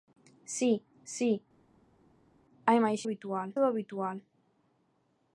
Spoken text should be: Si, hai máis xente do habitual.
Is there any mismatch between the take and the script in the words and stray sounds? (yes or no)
yes